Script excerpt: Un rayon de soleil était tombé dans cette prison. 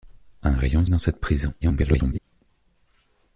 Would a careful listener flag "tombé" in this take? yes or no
yes